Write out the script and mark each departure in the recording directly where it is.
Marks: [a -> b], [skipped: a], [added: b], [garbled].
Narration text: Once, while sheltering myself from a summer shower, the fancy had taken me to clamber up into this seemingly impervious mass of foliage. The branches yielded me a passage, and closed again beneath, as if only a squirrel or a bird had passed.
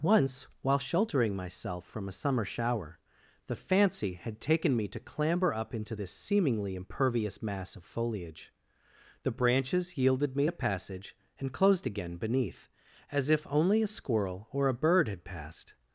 Once, while sheltering myself from a summer shower, the fancy had taken me to clamber up into this seemingly impervious mass of foliage. The branches yielded me a passage, and closed again beneath, as if only a squirrel or a bird had passed.